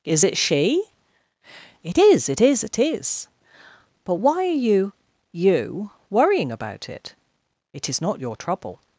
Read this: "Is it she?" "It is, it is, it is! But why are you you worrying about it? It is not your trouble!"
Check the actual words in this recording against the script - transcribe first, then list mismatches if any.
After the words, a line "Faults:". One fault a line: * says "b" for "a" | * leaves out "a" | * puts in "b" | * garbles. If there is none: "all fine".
"Is it she?" "It is, it is, it is! But why are you you worrying about it? It is not your trouble!"
Faults:
all fine